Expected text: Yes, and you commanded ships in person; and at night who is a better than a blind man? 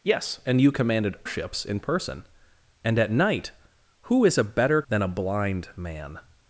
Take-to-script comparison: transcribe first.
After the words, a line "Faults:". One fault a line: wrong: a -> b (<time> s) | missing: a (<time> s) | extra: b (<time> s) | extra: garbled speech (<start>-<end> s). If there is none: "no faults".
Yes, and you commanded ships in person; and at night who is a better than a blind man?
Faults:
no faults